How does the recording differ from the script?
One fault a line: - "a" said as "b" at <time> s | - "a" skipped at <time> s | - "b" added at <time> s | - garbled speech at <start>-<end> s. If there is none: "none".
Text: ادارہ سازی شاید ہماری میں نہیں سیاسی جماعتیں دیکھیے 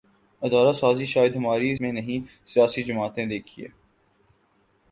none